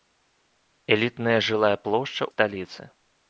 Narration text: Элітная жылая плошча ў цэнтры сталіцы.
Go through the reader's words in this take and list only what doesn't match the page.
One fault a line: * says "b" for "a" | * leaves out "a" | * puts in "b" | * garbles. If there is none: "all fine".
* leaves out "ў цэнтры"